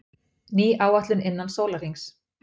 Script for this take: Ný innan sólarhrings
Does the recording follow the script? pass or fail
fail